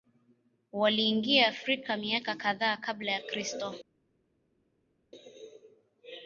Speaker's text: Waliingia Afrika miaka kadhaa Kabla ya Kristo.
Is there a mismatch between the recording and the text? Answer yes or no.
no